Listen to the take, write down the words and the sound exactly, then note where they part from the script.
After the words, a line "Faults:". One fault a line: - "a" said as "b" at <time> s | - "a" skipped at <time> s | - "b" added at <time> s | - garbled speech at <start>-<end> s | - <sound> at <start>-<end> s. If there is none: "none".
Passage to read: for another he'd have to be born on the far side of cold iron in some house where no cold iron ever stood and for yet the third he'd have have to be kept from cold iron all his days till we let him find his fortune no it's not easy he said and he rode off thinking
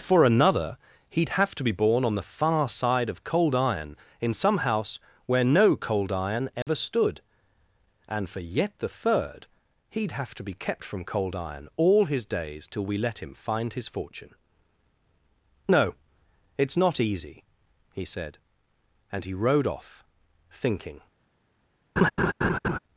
for another he'd have to be born on the far side of cold iron in some house where no cold iron ever stood and for yet the third he'd have to be kept from cold iron all his days till we let him find his fortune no it's not easy he said and he rode off thinking
Faults:
- dropout at 6.6-6.7 s
- "have" skipped at 10.3 s
- laugh at 22.0-22.8 s